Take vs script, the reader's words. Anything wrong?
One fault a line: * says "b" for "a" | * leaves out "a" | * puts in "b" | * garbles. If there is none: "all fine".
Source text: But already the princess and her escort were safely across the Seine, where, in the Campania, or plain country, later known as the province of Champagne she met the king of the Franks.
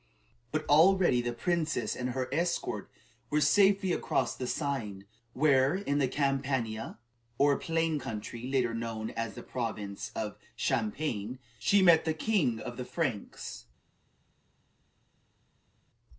all fine